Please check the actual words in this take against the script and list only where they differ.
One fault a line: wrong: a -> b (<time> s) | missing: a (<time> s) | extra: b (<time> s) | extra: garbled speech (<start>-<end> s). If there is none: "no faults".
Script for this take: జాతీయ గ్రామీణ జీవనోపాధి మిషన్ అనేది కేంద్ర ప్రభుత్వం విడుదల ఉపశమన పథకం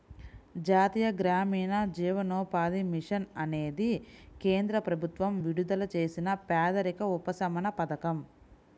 extra: చేసిన పేదరిక (6.0 s)